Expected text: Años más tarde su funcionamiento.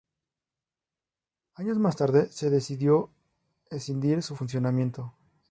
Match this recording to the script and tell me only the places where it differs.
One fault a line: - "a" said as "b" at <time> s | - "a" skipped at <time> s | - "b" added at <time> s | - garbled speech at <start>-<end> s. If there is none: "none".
- "se decidió escindir" added at 2.3 s